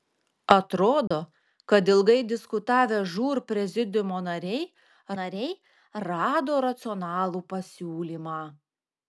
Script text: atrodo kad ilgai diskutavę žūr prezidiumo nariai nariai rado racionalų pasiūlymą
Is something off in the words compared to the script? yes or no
no